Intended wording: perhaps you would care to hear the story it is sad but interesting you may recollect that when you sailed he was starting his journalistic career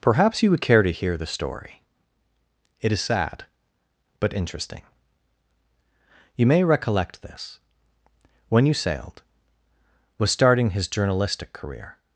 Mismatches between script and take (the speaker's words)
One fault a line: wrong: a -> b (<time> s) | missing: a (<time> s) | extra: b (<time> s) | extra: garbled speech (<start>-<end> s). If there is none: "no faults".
wrong: that -> this (7.2 s)
missing: he (9.2 s)